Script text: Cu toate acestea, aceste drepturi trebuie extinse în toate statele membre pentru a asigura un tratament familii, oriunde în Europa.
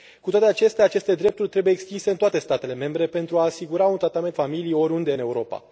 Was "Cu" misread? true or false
false